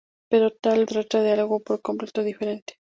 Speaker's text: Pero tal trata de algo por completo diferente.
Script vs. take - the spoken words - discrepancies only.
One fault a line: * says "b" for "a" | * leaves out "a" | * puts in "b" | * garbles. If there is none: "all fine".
all fine